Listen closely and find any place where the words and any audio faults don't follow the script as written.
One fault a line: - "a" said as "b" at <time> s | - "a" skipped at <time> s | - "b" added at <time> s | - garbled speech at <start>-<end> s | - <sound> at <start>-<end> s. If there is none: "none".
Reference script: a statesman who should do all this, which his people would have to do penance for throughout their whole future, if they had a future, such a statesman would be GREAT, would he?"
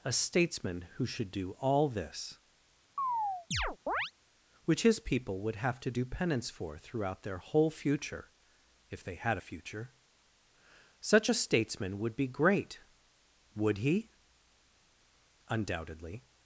- chirp at 3.0-4.1 s
- "Undoubtedly" added at 15.5 s